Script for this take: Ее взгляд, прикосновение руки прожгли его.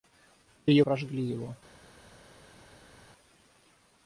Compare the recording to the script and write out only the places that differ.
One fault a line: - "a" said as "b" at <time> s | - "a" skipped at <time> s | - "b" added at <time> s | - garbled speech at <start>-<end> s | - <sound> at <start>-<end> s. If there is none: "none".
- "взгляд прикосновение руки" skipped at 0.8 s